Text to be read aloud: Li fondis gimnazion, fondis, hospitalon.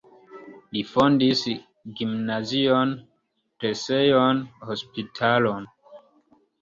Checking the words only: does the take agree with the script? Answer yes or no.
no